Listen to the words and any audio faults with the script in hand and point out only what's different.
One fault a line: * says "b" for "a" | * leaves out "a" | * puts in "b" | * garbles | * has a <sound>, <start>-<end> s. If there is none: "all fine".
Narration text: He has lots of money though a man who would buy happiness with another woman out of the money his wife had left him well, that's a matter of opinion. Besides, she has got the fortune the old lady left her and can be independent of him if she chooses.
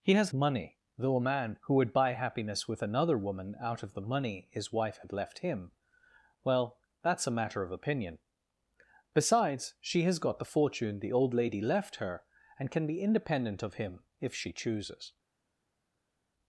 * leaves out "lots of"